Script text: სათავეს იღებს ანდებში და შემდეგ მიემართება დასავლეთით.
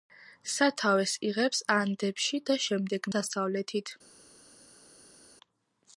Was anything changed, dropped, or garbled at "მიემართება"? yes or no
yes